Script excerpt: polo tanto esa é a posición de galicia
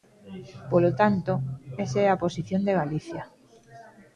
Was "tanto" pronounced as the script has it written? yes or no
yes